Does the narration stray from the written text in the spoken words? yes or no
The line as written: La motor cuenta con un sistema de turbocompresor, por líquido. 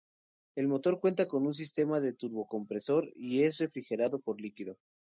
yes